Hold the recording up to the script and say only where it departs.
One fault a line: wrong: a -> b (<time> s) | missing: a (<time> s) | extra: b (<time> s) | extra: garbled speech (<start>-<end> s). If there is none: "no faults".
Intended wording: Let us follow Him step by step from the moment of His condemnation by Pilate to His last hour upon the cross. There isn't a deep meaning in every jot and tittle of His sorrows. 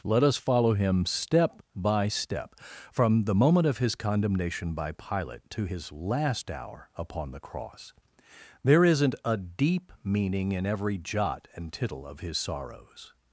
no faults